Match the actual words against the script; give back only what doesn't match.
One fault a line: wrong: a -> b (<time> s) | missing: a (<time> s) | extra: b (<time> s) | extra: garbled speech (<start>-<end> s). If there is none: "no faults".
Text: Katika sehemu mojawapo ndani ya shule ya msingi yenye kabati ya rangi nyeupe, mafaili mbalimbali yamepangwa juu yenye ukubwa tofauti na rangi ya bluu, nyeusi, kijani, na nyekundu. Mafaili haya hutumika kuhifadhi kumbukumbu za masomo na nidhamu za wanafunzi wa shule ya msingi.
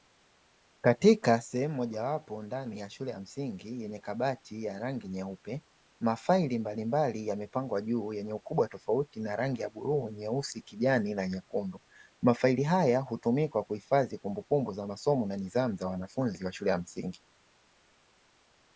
no faults